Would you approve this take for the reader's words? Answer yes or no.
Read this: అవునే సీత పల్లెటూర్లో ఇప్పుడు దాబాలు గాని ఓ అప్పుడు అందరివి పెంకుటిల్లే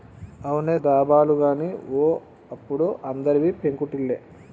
no